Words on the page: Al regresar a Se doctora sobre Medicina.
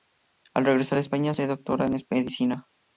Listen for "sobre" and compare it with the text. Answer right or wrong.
wrong